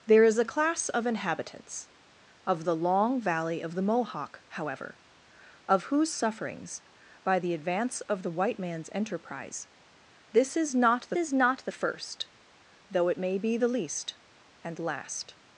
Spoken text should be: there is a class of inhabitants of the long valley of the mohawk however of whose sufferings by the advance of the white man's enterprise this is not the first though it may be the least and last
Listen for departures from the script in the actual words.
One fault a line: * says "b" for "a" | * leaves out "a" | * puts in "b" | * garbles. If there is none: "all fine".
* puts in "is not the"